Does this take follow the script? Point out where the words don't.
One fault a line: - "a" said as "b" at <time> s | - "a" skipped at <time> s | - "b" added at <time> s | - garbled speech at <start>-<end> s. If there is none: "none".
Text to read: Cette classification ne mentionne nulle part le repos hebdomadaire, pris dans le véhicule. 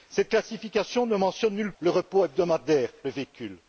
- "part" skipped at 1.7 s
- "pris dans" skipped at 2.9 s